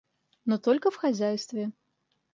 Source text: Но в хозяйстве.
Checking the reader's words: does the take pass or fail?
fail